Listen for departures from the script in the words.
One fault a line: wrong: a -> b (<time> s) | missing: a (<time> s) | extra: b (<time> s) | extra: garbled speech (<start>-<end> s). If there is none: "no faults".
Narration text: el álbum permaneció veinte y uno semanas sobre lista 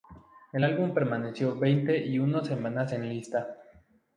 wrong: sobre -> en (2.9 s)